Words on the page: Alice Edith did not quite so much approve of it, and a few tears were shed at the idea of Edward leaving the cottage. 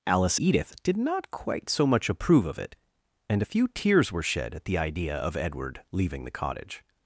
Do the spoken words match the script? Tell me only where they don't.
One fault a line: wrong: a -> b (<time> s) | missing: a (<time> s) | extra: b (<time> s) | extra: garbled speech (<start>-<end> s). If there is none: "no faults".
no faults